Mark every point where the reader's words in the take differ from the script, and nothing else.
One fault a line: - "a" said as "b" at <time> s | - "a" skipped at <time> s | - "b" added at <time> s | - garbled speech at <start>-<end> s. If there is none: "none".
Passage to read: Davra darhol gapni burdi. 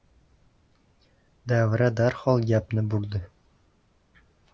none